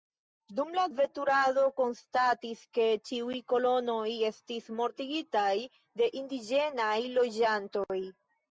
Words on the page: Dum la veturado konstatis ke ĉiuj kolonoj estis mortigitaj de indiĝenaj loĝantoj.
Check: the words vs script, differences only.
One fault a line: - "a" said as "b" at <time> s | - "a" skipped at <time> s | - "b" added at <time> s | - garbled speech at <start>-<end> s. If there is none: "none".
none